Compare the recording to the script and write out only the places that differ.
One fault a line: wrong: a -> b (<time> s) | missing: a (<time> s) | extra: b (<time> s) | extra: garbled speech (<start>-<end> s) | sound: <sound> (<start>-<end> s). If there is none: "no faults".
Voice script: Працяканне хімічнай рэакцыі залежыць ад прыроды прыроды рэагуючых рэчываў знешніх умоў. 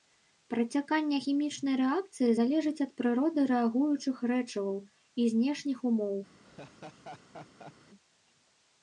missing: прыроды (3.5 s)
extra: і (5.2 s)
sound: laugh (6.4-7.7 s)